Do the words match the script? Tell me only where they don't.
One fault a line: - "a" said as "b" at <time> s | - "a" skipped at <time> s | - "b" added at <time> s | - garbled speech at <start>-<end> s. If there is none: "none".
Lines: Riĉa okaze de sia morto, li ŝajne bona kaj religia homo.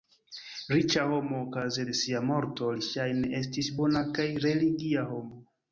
- "homo" added at 1.1 s
- "estis" added at 3.4 s